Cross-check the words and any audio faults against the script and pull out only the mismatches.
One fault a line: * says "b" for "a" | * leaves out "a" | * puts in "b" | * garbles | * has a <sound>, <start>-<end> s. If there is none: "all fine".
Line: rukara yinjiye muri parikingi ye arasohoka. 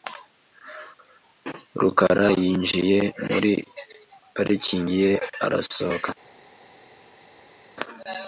all fine